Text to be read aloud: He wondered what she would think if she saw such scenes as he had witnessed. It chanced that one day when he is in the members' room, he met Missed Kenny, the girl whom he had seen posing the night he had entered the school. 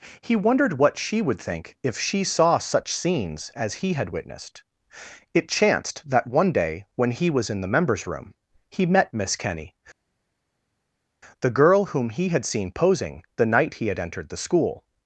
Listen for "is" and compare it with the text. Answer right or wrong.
wrong